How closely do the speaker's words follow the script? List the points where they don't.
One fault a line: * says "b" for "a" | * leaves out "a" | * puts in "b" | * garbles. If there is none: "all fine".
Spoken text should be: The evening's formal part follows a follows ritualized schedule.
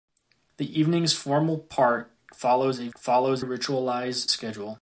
all fine